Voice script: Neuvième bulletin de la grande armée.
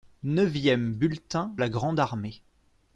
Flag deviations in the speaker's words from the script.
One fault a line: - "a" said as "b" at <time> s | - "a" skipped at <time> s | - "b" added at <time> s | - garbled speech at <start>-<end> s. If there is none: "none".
- "de" skipped at 1.5 s